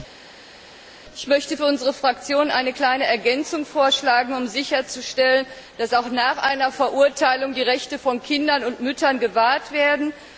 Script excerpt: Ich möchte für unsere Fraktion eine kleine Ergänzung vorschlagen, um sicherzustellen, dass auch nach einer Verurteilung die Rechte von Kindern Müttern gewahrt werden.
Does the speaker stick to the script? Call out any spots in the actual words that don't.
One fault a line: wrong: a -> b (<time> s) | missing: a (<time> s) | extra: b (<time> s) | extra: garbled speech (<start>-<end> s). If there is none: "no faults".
extra: und (8.6 s)